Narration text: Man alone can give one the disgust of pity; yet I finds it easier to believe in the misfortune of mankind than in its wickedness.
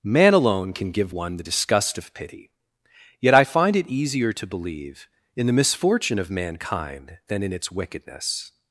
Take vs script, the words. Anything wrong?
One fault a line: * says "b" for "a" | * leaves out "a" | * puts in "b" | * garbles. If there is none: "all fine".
* says "find" for "finds"